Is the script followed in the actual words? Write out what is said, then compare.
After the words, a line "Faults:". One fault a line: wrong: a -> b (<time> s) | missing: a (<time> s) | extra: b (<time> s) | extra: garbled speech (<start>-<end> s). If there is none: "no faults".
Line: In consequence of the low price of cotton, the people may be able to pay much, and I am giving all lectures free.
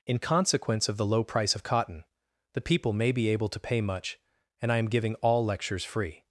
In consequence of the low price of cotton, the people may be able to pay much, and I am giving all lectures free.
Faults:
no faults